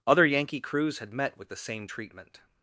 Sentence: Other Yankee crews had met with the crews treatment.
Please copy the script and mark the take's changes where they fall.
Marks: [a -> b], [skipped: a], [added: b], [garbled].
Other Yankee crews had met with the [crews -> same] treatment.